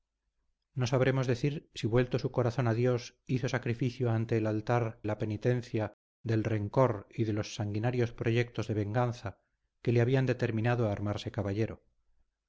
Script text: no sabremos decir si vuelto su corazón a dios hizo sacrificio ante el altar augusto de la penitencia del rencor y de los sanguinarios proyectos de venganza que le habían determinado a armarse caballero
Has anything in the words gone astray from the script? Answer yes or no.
yes